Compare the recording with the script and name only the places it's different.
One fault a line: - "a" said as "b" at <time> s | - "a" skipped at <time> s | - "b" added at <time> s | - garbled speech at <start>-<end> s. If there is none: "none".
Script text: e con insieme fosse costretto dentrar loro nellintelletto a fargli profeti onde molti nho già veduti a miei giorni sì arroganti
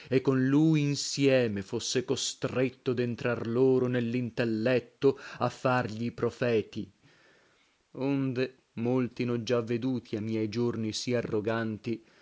- "lui" added at 0.5 s